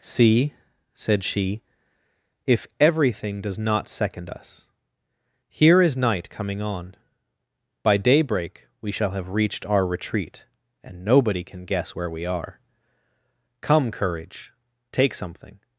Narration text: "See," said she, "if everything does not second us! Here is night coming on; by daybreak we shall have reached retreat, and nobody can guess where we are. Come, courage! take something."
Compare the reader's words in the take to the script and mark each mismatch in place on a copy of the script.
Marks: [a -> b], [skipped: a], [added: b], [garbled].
"See," said she, "if everything does not second us! Here is night coming on; by daybreak we shall have reached [added: our] retreat, and nobody can guess where we are. Come, courage! take something."